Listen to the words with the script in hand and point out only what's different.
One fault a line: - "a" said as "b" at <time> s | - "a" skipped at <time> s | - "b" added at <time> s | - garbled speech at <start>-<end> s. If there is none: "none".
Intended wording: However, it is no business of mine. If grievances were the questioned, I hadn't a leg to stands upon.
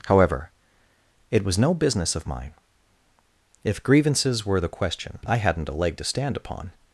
- "is" said as "was" at 1.4 s
- "questioned" said as "question" at 4.7 s
- "stands" said as "stand" at 6.0 s